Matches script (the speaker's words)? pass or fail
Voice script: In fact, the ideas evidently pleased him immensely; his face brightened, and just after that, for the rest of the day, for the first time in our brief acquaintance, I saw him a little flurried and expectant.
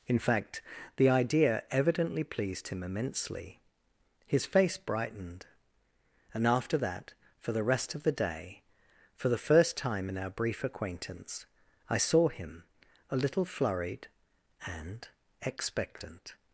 fail